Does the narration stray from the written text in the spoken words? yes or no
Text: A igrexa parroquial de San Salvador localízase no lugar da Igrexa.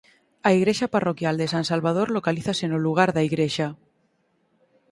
no